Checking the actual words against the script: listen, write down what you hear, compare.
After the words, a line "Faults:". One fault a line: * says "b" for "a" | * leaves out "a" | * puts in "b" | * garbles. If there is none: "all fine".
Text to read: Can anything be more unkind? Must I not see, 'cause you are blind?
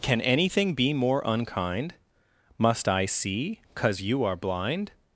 Can anything be more unkind? Must I see, 'cause you are blind?
Faults:
* leaves out "not"